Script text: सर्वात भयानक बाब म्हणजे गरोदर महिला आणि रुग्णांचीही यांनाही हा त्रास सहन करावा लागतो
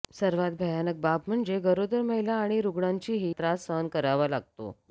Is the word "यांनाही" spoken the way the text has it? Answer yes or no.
no